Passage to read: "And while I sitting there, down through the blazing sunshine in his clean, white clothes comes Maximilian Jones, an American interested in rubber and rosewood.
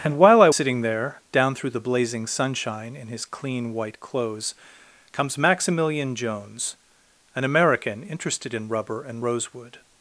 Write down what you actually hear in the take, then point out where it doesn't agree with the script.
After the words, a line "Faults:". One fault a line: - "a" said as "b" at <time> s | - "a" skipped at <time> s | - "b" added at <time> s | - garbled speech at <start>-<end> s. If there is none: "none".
"And while I sitting there, down through the blazing sunshine in his clean, white clothes comes Maximilian Jones, an American interested in rubber and rosewood.
Faults:
none